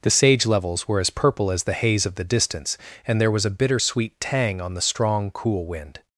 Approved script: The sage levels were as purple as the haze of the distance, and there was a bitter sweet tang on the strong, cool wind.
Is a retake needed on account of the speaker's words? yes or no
no